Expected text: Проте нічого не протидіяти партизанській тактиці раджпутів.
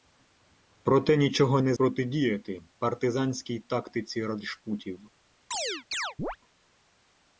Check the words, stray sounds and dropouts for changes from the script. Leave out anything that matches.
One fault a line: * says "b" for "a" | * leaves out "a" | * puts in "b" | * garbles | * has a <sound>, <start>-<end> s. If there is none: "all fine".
* has a chirp, 5.5-6.4 s